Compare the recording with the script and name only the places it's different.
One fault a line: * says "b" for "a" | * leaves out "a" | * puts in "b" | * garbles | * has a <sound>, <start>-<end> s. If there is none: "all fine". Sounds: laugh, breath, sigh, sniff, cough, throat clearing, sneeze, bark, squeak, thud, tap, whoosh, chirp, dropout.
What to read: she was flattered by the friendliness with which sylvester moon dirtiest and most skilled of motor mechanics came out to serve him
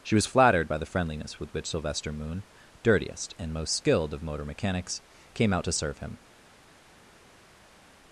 all fine